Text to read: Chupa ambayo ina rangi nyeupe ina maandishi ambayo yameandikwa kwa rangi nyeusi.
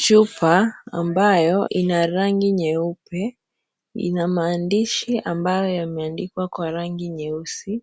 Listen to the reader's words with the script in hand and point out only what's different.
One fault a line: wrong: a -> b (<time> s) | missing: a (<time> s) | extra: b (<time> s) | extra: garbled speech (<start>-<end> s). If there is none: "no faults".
no faults